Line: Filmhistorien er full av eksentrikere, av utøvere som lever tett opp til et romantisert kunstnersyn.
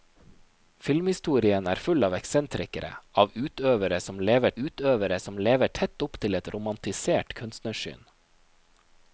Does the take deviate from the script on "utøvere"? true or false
false